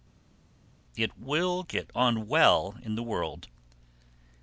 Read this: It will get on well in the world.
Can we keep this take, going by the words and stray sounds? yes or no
yes